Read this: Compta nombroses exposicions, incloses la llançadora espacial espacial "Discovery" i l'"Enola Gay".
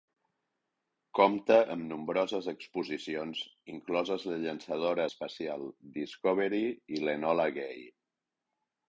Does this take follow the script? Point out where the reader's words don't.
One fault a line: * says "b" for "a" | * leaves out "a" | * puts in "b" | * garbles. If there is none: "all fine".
* puts in "amb"
* leaves out "espacial"